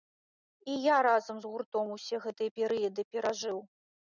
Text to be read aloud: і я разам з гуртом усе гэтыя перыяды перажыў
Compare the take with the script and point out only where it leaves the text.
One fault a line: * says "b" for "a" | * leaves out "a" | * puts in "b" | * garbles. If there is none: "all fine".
all fine